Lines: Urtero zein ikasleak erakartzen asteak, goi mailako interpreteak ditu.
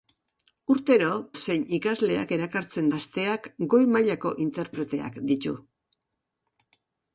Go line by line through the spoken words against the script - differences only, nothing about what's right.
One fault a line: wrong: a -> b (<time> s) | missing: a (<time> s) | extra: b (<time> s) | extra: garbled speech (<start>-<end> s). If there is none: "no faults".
no faults